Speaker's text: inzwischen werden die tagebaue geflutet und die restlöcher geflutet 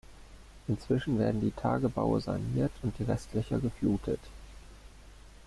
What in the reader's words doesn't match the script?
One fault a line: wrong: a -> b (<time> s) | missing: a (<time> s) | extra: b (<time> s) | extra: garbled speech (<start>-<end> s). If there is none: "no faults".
wrong: geflutet -> saniert (2.2 s)